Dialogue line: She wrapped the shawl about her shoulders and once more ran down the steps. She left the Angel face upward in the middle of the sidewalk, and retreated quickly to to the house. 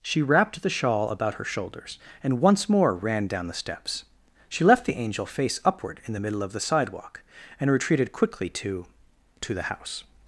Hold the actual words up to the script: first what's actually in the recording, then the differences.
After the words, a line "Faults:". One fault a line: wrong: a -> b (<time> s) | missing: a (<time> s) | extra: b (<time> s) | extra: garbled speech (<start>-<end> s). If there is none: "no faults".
She wrapped the shawl about her shoulders and once more ran down the steps. She left the Angel face upward in the middle of the sidewalk, and retreated quickly to to the house.
Faults:
no faults